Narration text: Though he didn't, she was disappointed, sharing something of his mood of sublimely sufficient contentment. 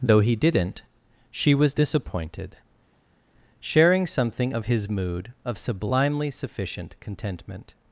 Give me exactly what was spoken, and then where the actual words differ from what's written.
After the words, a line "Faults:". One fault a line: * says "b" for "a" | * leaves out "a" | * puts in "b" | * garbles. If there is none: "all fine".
Though he didn't, she was disappointed, sharing something of his mood of sublimely sufficient contentment.
Faults:
all fine